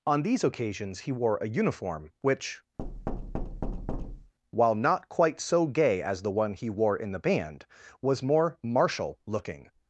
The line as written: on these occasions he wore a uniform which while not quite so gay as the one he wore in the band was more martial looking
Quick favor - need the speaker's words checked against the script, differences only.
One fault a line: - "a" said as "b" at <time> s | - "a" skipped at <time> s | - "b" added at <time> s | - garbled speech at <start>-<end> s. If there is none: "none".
none